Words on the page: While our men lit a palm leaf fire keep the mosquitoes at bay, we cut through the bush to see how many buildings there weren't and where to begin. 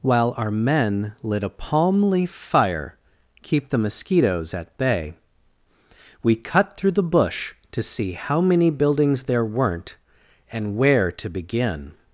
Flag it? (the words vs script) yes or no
no